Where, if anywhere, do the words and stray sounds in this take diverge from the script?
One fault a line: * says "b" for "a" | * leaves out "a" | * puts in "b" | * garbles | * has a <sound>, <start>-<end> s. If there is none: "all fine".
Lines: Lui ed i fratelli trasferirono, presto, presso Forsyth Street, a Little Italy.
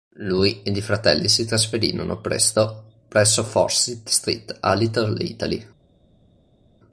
* puts in "si"